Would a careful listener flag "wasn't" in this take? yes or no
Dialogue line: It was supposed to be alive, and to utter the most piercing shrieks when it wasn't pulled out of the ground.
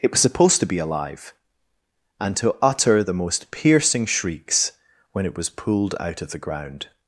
yes